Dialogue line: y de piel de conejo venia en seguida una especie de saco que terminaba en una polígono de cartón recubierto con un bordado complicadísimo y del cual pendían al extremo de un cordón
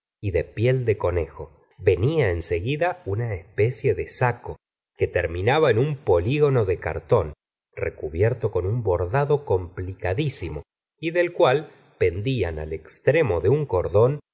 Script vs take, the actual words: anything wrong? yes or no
yes